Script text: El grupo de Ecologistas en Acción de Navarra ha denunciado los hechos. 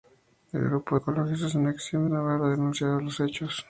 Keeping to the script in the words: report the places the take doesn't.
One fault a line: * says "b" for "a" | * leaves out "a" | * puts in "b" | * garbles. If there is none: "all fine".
all fine